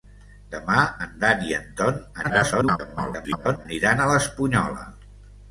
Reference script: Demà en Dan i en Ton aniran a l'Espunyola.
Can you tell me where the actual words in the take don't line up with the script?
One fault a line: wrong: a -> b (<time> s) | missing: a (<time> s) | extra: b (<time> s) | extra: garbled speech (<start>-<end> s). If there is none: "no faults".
extra: garbled speech (2.2-3.7 s)